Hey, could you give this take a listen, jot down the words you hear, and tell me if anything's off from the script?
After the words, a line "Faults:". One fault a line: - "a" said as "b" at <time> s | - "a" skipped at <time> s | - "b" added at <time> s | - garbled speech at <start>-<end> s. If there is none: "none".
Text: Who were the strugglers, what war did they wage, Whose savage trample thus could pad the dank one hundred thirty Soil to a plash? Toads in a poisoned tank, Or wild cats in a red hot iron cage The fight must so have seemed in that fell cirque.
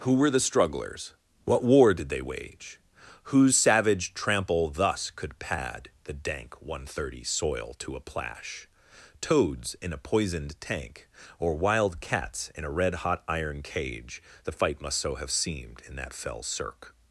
Who were the strugglers, what war did they wage, Whose savage trample thus could pad the dank one hundred thirty Soil to a plash? Toads in a poisoned tank, Or wild cats in a red hot iron cage The fight must so have seemed in that fell cirque.
Faults:
none